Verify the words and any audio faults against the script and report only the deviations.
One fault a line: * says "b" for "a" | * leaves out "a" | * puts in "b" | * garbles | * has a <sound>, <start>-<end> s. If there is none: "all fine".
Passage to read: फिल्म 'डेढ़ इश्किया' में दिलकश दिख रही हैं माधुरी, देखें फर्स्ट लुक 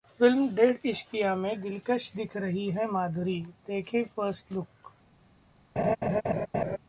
* has a laugh, 5.8-6.8 s